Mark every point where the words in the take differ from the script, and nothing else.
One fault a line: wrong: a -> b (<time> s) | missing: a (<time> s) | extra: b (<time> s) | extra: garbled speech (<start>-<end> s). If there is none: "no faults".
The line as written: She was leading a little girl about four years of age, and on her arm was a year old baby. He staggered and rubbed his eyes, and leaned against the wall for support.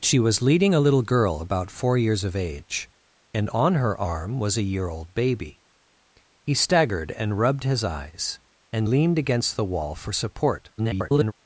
extra: garbled speech (10.8-11.3 s)